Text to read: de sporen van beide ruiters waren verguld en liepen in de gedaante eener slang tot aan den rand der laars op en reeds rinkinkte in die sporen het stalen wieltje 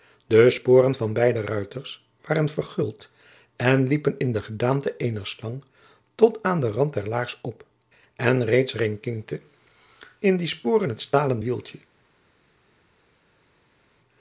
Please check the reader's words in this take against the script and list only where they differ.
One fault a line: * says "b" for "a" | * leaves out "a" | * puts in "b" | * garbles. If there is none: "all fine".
all fine